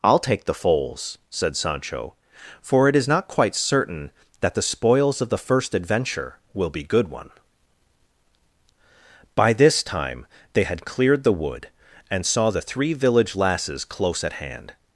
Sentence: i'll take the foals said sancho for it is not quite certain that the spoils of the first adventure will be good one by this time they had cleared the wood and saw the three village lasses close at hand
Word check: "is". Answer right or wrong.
right